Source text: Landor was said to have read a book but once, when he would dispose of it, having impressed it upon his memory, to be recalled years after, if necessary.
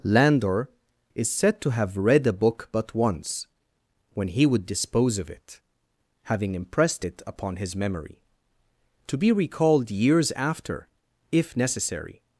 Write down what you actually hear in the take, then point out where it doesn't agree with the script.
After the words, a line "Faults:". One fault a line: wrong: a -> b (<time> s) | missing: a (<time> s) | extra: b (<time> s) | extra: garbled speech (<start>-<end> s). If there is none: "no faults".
Landor is said to have read a book but once, when he would dispose of it, having impressed it upon his memory, to be recalled years after, if necessary.
Faults:
wrong: was -> is (1.1 s)